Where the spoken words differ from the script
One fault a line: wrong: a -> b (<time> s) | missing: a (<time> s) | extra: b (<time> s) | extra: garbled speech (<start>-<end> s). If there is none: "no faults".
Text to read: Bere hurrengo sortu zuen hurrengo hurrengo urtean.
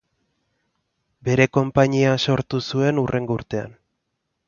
wrong: hurrengo -> konpainia (1.6 s)
missing: hurrengo (3.4 s)